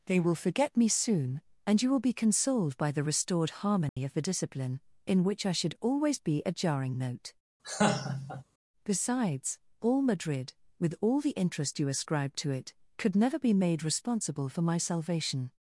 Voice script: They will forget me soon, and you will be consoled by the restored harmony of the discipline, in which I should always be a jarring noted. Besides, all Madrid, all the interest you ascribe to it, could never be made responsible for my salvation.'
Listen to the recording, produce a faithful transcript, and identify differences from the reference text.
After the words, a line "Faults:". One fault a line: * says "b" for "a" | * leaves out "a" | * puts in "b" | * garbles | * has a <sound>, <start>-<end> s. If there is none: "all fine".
They will forget me soon, and you will be consoled by the restored harmony of the discipline, in which I should always be a jarring note. Besides, all Madrid, with all the interest you ascribe to it, could never be made responsible for my salvation.'
Faults:
* has a dropout, 3.9-4.0 s
* says "note" for "noted"
* has a laugh, 7.6-8.4 s
* puts in "with"